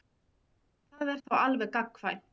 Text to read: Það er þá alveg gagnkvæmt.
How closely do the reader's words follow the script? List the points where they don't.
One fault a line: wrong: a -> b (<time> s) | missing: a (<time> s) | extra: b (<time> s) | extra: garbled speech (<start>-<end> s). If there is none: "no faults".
no faults